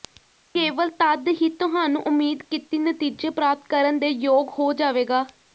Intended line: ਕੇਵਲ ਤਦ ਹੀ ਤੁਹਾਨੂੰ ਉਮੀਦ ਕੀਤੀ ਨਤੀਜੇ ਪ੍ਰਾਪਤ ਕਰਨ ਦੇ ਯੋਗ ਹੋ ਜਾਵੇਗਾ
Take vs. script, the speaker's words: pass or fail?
pass